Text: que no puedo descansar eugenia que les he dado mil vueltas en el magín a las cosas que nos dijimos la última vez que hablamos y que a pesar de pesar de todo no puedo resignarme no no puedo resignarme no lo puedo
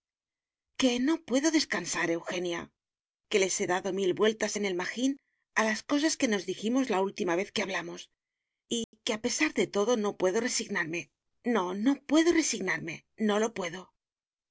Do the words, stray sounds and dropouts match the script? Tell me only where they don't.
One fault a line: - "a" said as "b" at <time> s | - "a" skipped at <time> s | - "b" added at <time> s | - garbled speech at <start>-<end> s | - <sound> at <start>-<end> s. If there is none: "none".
- dropout at 8.8-8.9 s
- "pesar de" skipped at 9.7 s